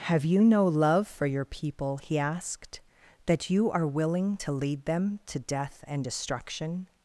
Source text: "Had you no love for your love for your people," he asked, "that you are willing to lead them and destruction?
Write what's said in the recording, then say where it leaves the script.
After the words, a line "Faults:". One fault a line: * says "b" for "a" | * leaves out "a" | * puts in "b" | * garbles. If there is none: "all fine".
"Have you no love for your people," he asked, "that you are willing to lead them to death and destruction?
Faults:
* says "Have" for "Had"
* leaves out "love for your"
* puts in "to death"